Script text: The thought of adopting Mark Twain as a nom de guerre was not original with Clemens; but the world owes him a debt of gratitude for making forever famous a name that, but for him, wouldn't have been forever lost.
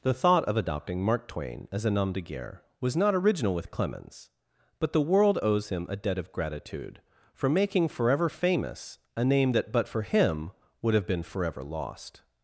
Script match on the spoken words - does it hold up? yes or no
no